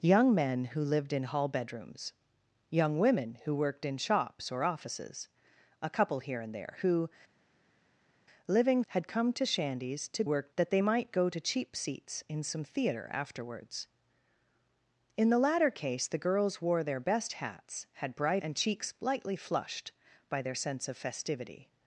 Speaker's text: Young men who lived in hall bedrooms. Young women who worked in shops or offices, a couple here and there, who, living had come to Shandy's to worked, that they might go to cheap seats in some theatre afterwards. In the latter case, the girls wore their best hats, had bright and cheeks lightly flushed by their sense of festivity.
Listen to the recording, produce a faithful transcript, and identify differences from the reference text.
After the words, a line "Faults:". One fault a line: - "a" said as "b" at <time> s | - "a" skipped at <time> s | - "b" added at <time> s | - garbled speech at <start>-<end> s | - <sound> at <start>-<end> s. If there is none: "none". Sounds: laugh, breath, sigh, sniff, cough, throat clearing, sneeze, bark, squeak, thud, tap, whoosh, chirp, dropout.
Young men who lived in hall bedrooms. Young women who worked in shops or offices, a couple here and there, who, living had come to Shandy's to worked, that they might go to cheap seats in some theatre afterwards. In the latter case, the girls wore their best hats, had bright and cheeks lightly flushed by their sense of festivity.
Faults:
none